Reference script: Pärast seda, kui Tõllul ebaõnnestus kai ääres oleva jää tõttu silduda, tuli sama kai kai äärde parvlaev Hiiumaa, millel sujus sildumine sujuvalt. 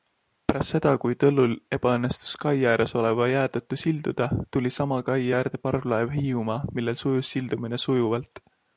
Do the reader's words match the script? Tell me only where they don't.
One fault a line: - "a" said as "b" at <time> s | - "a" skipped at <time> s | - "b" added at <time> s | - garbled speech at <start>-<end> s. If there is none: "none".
- "kai" skipped at 5.3 s